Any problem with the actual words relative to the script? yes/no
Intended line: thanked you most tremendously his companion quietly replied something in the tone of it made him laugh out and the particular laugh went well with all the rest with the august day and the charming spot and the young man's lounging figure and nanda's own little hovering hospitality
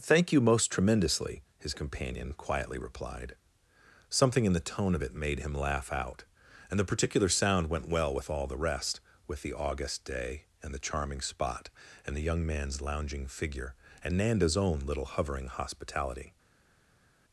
yes